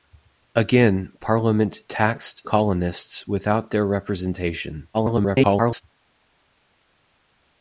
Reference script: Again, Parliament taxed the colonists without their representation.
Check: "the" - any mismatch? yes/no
yes